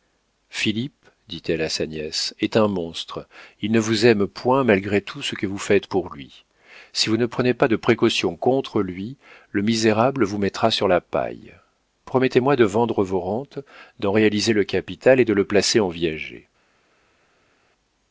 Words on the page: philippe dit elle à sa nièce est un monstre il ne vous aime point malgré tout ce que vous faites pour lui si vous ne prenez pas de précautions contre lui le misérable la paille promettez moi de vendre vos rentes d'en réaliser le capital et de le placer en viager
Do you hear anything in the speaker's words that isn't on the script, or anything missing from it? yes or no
yes